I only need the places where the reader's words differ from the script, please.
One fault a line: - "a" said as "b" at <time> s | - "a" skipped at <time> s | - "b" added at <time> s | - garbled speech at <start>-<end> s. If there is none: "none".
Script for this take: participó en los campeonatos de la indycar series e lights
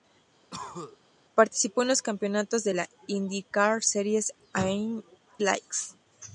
none